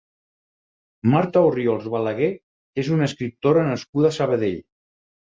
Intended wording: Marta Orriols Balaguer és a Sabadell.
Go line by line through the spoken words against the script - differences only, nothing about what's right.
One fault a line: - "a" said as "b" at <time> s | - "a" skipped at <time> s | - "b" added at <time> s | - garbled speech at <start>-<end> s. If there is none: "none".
- "una escriptora nascuda" added at 3.0 s